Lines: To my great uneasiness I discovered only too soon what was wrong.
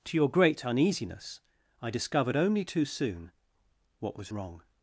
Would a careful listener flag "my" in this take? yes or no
yes